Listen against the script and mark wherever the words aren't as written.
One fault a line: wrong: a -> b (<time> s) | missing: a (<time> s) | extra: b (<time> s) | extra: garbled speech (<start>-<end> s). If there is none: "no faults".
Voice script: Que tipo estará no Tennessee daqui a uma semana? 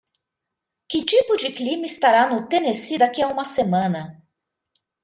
extra: de clima (1.4 s)